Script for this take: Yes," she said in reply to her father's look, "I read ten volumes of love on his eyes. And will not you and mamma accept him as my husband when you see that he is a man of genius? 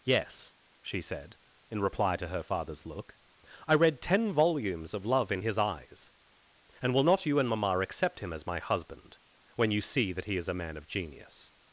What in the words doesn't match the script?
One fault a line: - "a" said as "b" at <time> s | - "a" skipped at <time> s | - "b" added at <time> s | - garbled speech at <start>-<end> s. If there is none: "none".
- "on" said as "in" at 5.3 s